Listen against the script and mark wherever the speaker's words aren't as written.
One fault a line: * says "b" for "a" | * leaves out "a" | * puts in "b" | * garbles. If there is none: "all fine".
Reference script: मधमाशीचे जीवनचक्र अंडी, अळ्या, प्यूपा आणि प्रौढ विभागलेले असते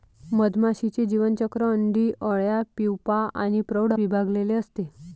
all fine